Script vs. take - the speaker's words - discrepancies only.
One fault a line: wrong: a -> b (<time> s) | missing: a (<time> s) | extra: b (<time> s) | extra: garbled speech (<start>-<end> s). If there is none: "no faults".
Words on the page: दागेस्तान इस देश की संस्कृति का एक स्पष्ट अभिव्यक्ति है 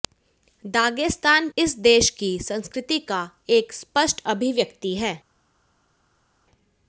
no faults